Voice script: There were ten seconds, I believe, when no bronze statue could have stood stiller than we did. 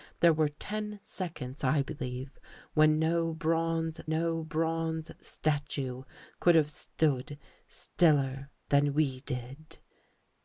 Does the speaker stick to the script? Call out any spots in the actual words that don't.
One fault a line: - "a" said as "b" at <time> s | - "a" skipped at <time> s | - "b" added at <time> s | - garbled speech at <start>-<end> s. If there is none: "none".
- "no bronze" added at 4.1 s